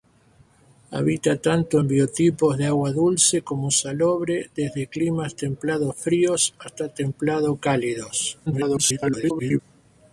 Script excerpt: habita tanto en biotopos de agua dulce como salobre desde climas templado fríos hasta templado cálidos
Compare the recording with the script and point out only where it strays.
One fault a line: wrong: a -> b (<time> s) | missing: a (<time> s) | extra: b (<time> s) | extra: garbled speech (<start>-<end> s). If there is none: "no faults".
extra: garbled speech (8.5-9.6 s)